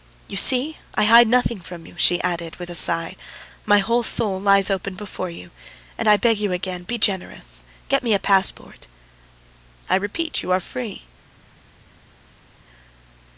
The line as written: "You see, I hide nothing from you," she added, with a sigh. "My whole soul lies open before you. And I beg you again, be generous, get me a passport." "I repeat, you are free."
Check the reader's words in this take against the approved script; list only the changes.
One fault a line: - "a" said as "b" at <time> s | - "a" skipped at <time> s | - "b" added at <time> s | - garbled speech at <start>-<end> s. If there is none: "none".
none